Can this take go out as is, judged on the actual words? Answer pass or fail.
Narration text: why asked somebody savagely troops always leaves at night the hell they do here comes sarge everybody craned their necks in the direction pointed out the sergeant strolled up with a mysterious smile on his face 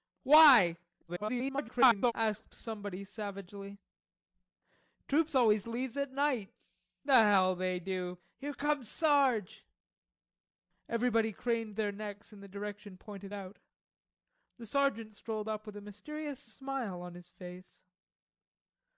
fail